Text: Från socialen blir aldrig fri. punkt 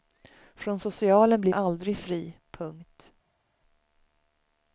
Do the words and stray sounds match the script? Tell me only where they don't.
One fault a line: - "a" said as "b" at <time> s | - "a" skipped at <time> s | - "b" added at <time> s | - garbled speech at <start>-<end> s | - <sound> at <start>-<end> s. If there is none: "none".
none